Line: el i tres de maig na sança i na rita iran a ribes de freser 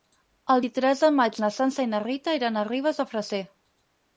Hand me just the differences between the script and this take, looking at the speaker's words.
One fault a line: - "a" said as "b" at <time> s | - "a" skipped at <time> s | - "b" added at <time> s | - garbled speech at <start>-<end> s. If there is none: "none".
none